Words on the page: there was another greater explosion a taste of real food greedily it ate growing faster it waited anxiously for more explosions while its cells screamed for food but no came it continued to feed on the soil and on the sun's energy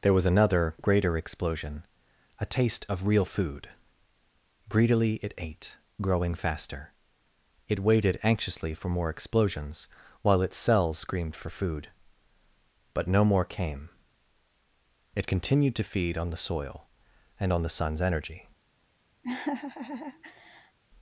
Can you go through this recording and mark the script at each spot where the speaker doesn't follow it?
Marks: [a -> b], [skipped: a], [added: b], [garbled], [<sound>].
there was another greater explosion a taste of real food greedily it ate growing faster it waited anxiously for more explosions while its cells screamed for food but no [added: more] came it continued to feed on the soil and on the sun's energy [laugh]